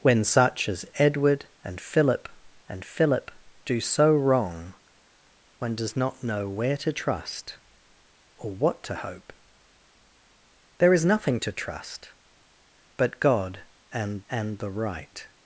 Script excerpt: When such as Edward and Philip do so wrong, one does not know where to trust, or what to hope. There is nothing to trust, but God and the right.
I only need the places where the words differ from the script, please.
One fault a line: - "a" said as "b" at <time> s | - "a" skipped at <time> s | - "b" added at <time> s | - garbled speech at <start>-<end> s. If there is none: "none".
- "and Philip" added at 2.7 s
- "and" added at 14.3 s